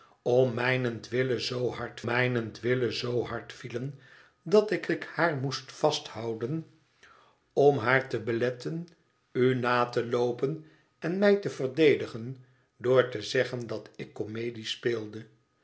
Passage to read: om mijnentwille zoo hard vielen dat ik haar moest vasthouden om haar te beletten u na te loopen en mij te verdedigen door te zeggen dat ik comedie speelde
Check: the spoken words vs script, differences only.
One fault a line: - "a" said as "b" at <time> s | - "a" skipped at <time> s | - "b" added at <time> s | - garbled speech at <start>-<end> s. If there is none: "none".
- "mijnentwille zoo hard" added at 2.0 s
- "ik" added at 4.9 s